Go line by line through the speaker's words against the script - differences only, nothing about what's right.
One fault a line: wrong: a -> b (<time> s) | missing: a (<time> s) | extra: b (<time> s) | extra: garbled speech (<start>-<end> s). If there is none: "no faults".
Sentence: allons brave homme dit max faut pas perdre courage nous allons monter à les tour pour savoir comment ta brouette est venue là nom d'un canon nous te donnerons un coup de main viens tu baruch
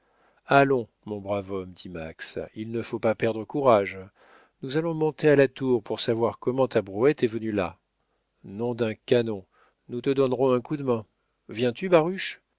extra: mon (1.1 s)
extra: il ne (2.5 s)
wrong: les -> la (5.3 s)